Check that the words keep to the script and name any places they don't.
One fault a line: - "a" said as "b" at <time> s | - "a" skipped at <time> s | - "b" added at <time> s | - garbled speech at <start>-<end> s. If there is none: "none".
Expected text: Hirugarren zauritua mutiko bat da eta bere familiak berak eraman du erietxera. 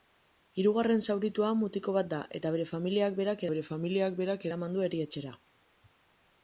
- "bere familiak berak" added at 3.5 s